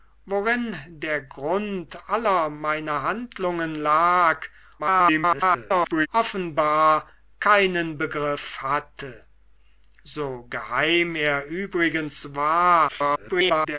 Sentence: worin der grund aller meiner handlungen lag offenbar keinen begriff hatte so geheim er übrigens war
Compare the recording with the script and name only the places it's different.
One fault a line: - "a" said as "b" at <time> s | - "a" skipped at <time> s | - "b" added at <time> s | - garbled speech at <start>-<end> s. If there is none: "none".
- garbled speech at 4.8-6.1 s
- garbled speech at 12.9-13.8 s